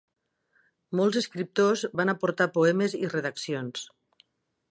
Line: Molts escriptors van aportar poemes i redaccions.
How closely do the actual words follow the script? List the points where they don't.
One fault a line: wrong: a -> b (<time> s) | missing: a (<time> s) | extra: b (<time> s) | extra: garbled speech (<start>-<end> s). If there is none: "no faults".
no faults